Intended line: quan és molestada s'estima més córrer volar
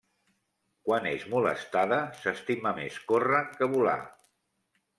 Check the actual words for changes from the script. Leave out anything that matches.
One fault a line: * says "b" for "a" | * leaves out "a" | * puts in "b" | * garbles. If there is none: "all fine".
* puts in "que"